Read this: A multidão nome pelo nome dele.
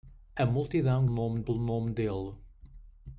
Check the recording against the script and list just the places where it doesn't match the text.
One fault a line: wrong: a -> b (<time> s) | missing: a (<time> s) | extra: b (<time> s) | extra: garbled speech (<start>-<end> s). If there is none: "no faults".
no faults